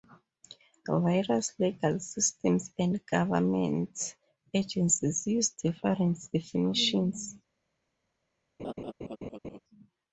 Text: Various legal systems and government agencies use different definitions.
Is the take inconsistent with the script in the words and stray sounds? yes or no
yes